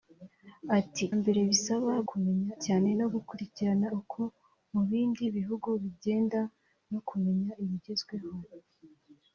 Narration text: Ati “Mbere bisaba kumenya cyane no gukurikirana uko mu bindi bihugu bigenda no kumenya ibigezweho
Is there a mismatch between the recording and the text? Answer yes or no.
no